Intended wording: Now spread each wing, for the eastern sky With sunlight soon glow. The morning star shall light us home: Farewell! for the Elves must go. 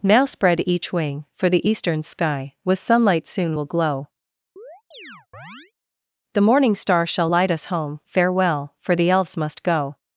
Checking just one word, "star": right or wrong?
right